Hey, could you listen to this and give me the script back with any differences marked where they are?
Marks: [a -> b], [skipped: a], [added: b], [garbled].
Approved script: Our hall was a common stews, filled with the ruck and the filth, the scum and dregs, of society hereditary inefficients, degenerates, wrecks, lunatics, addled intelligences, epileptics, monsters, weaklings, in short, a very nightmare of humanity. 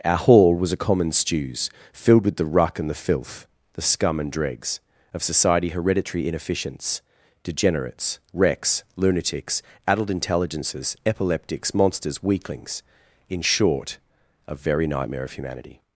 Our hall was a common stews, filled with the ruck and the filth, the scum and dregs, of society hereditary inefficients, degenerates, wrecks, lunatics, addled intelligences, epileptics, monsters, weaklings, in short, a very nightmare of humanity.